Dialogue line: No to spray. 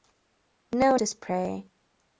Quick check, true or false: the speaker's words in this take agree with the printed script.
true